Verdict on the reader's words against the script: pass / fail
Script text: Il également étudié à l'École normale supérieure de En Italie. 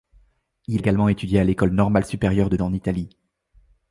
pass